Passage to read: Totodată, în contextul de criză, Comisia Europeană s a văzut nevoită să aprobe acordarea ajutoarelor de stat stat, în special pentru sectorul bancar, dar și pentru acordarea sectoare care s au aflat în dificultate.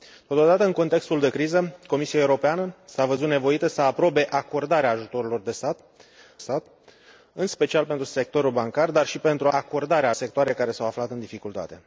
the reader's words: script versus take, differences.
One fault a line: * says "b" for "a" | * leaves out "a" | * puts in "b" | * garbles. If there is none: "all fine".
all fine